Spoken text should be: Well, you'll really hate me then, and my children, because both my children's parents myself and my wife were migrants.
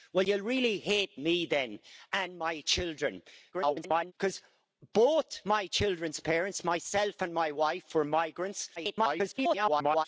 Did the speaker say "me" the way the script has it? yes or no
yes